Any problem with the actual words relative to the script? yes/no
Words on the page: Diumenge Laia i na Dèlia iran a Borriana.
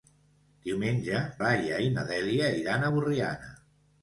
no